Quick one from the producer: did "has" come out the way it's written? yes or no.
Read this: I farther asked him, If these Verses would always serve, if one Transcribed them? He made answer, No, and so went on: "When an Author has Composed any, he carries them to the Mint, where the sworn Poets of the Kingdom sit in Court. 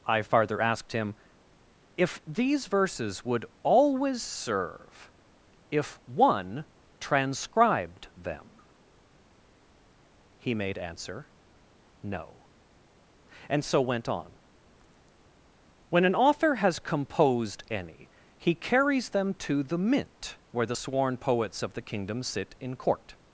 yes